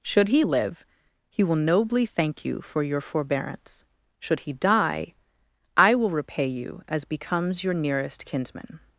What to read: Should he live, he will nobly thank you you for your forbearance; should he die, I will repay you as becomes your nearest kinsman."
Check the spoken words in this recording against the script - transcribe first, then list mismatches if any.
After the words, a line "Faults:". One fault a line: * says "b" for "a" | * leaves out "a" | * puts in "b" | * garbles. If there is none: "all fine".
Should he live, he will nobly thank you for your forbearance; should he die, I will repay you as becomes your nearest kinsman."
Faults:
* leaves out "you"